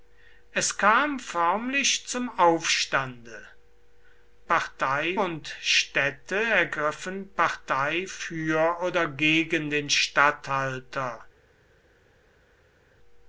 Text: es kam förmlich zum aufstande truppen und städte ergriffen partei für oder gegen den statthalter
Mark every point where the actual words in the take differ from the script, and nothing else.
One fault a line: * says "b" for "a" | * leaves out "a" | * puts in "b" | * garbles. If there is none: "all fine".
* says "partei" for "truppen"